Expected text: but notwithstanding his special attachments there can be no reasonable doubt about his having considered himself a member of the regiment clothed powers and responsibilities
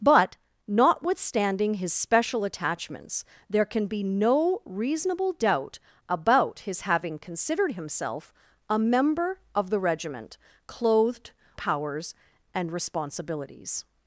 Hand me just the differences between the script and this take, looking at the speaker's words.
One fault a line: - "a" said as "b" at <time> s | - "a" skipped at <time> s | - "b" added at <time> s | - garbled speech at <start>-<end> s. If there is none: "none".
none